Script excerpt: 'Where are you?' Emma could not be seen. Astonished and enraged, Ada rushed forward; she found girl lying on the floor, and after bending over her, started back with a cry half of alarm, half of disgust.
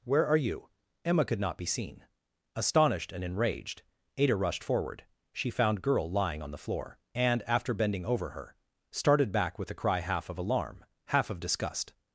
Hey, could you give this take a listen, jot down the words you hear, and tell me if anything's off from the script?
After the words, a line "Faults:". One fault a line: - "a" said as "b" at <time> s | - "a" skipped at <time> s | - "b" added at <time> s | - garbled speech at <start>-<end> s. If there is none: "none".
'Where are you?' Emma could not be seen. Astonished and enraged, Ada rushed forward; she found girl lying on the floor, and after bending over her, started back with a cry half of alarm, half of disgust.
Faults:
none